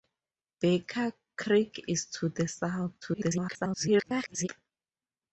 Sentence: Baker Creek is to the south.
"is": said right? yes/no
yes